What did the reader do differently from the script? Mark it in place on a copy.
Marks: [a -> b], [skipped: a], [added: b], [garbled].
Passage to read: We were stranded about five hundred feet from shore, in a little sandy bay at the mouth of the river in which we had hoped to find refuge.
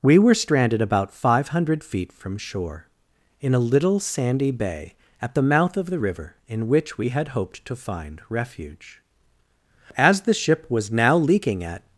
We were stranded about five hundred feet from shore, in a little sandy bay at the mouth of the river in which we had hoped to find refuge. [added: As the ship was now leaking at]